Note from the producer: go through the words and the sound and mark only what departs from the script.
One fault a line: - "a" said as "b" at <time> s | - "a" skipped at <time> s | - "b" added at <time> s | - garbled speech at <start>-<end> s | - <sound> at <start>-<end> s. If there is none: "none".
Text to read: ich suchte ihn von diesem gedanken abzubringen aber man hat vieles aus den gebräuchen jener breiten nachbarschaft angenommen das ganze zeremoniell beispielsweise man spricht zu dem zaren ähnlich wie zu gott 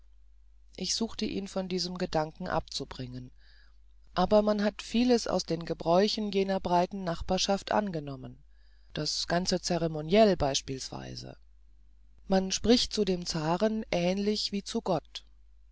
none